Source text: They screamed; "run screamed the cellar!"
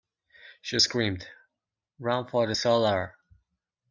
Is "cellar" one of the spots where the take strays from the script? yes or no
no